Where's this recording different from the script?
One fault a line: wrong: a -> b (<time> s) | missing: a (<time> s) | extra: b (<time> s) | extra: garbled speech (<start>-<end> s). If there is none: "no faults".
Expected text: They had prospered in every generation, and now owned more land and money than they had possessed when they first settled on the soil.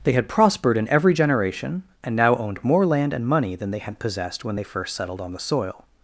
no faults